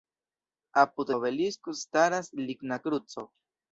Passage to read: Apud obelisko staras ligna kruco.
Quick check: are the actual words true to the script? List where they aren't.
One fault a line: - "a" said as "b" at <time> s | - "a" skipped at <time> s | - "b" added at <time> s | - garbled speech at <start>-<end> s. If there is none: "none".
none